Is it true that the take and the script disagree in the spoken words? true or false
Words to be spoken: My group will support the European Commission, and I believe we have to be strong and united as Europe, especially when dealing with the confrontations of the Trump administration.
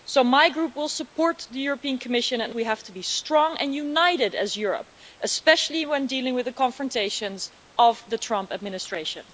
true